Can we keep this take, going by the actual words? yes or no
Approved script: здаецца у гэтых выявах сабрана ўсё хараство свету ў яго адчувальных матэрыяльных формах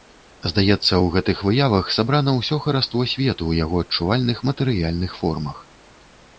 yes